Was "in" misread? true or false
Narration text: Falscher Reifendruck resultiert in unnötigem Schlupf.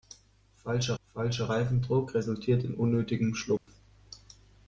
false